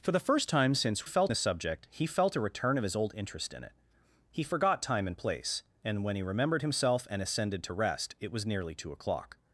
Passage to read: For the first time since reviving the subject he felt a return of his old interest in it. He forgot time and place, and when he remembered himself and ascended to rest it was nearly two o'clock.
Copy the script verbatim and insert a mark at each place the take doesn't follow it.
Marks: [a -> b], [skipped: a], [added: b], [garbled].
For the first time since [reviving -> felt] the subject he felt a return of his old interest in it. He forgot time and place, and when he remembered himself and ascended to rest it was nearly two o'clock.